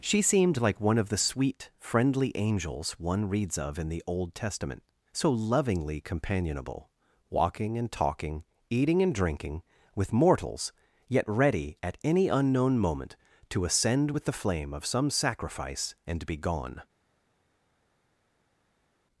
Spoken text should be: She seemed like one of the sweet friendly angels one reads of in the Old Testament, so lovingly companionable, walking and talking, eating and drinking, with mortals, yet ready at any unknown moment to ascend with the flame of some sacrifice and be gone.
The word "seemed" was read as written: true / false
true